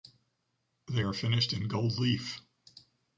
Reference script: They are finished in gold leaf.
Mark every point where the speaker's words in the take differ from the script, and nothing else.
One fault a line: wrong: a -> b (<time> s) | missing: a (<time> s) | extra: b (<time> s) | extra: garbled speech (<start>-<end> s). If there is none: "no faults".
no faults